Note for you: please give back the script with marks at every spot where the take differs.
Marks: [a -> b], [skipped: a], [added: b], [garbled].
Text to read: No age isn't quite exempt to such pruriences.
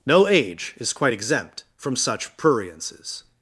No age [isn't -> is] quite exempt [to -> from] such pruriences.